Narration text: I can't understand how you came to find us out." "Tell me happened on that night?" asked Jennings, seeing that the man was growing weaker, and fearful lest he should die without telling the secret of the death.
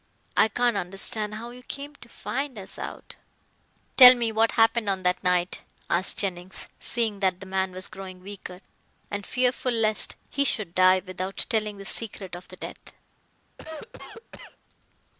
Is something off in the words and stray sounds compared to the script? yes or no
yes